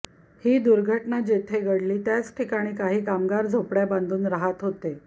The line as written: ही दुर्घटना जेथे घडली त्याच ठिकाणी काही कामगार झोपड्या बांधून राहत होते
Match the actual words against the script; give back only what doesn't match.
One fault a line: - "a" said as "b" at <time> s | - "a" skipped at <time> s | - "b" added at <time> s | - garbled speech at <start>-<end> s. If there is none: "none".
none